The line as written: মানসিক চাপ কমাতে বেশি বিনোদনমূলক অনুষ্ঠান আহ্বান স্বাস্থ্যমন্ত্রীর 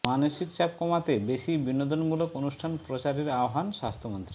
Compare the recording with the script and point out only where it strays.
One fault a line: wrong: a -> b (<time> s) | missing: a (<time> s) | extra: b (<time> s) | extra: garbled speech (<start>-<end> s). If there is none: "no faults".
extra: প্রচারের (2.8 s)